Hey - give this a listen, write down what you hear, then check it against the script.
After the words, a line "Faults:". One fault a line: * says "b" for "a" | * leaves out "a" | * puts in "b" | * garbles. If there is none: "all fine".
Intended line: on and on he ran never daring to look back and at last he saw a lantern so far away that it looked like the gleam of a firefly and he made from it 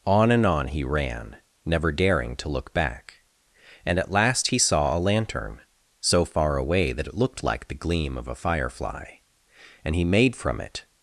on and on he ran never daring to look back and at last he saw a lantern so far away that it looked like the gleam of a firefly and he made from it
Faults:
all fine